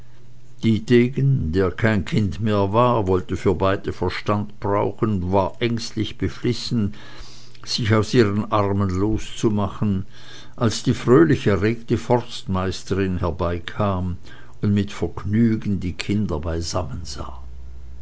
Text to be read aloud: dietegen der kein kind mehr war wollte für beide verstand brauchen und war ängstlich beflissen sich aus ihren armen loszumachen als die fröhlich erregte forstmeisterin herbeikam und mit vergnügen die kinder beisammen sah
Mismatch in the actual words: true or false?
false